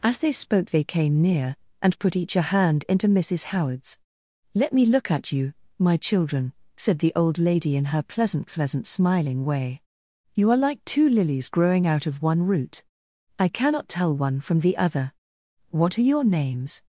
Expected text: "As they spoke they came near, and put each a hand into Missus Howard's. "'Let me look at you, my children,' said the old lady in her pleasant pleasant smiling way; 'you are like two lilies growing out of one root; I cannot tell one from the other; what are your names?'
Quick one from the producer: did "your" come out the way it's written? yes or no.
yes